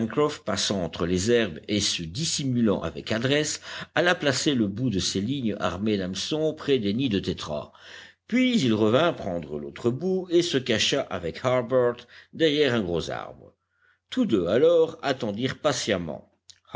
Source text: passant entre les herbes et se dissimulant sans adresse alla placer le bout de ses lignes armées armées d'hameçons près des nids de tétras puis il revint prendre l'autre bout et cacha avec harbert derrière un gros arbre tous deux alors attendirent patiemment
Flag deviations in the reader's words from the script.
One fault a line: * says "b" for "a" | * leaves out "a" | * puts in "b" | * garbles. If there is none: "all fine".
* says "avec" for "sans"
* leaves out "armées"
* puts in "se"